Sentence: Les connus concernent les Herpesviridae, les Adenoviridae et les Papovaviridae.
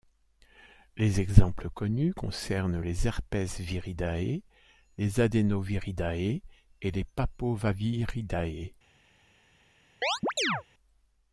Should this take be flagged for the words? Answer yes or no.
yes